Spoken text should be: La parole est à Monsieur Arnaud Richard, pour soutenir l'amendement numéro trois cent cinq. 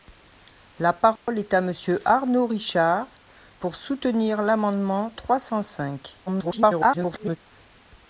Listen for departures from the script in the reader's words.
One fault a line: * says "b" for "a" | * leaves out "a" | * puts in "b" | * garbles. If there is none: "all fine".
* leaves out "numéro"
* garbles